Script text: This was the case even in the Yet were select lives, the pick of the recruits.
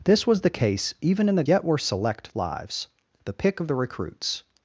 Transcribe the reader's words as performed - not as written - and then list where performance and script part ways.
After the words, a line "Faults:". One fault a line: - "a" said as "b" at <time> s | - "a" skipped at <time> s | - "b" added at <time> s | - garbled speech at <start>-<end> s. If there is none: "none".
This was the case even in the Yet were select lives, the pick of the recruits.
Faults:
none